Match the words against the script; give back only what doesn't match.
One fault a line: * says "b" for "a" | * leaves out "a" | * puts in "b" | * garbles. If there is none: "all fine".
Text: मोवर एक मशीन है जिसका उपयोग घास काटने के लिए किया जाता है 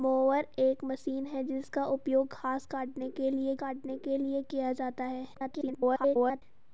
* puts in "काटने के लिए"
* garbles